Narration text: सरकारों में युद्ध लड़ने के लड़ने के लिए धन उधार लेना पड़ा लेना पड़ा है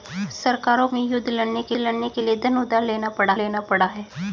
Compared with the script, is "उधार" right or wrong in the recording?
right